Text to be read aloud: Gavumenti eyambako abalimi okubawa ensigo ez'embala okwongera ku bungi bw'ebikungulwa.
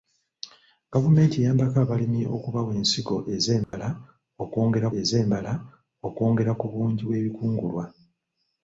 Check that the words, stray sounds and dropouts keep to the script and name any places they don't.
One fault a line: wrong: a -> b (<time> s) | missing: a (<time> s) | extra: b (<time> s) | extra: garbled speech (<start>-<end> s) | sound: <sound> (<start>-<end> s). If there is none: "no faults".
sound: dropout (3.6-3.7 s)
extra: ez'embala okwongera (5.0 s)